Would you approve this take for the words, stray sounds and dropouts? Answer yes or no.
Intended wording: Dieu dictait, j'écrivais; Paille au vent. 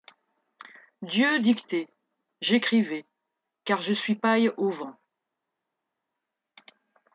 no